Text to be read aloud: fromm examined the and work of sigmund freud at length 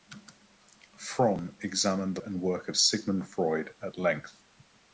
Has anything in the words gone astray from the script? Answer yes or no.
no